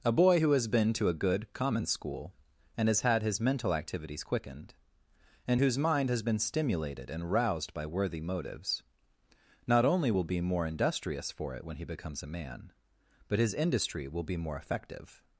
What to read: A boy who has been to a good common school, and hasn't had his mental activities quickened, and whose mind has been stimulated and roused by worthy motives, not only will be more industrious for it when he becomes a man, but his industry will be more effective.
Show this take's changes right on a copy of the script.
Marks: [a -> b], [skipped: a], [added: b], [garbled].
A boy who has been to a good common school, and [hasn't -> has] had his mental activities quickened, and whose mind has been stimulated and roused by worthy motives, not only will be more industrious for it when he becomes a man, but his industry will be more effective.